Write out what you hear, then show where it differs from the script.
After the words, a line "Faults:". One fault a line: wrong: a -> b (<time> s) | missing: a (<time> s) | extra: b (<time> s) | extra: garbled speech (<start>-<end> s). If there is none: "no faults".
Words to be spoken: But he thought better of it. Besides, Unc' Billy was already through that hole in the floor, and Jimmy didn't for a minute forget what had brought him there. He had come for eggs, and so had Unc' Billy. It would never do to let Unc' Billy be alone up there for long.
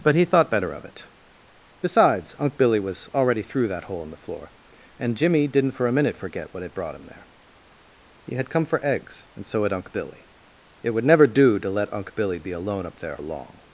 But he thought better of it. Besides, Unc' Billy was already through that hole in the floor, and Jimmy didn't for a minute forget what had brought him there. He had come for eggs, and so had Unc' Billy. It would never do to let Unc' Billy be alone up there long.
Faults:
missing: for (13.2 s)